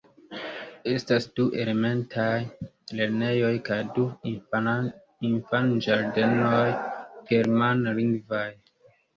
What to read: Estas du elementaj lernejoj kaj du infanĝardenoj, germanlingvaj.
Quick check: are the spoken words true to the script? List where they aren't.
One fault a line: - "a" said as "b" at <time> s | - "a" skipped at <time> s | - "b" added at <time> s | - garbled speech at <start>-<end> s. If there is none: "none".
none